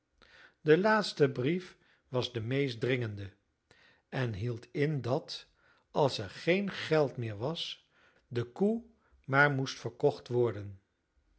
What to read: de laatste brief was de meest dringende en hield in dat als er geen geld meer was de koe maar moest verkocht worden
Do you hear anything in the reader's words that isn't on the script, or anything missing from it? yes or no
no